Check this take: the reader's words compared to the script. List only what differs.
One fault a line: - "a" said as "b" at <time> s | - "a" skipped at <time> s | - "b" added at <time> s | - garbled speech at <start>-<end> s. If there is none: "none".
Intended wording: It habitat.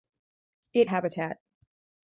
none